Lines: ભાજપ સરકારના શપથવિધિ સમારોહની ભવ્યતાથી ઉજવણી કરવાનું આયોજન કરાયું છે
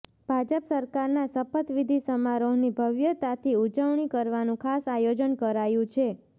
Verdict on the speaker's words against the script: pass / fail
fail